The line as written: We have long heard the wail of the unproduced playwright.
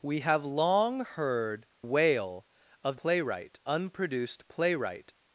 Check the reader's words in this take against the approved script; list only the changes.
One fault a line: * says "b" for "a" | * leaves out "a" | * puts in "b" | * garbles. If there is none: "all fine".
* leaves out "the"
* says "playwright" for "the"